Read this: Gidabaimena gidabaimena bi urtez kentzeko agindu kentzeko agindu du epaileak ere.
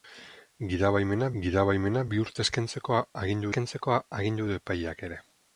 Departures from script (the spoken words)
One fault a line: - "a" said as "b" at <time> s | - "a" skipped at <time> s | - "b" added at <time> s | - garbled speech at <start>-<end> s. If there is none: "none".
none